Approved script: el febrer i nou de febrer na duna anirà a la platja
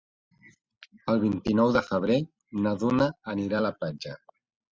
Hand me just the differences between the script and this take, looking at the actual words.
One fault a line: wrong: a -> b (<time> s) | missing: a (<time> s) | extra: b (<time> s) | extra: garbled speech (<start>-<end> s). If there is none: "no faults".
wrong: febrer -> vint (1.2 s)